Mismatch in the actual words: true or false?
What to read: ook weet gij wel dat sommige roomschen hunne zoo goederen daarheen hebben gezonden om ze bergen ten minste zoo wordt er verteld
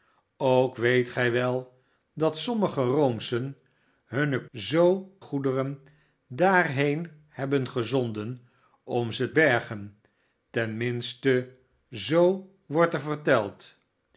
false